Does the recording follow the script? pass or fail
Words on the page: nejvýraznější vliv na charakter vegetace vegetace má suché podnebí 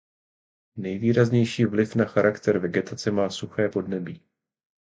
fail